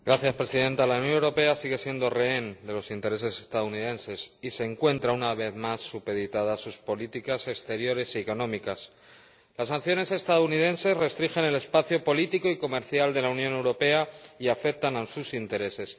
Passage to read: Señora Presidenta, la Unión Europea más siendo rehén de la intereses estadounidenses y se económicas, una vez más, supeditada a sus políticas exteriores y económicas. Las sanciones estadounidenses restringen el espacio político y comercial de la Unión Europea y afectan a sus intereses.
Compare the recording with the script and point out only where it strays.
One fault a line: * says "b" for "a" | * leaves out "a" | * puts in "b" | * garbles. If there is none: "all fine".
* says "sigue" for "más"
* says "los" for "la"
* says "encuentra" for "económicas"